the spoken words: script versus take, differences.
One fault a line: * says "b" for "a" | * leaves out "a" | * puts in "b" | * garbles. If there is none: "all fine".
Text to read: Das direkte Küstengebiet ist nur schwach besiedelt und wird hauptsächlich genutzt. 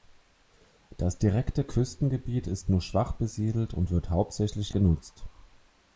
all fine